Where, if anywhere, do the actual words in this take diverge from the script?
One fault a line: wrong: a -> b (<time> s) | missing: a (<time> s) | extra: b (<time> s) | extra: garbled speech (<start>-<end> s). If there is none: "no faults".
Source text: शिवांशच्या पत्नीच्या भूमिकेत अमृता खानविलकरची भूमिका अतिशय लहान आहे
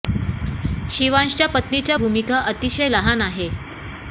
missing: भूमिकेत अमृता खानविलकरची (2.0 s)